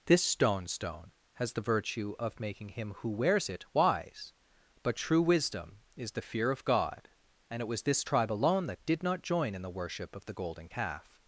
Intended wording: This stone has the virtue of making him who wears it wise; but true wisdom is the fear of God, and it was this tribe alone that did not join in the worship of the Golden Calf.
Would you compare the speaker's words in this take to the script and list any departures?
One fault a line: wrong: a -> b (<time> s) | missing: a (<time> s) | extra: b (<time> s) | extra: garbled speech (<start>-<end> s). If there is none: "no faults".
extra: stone (0.7 s)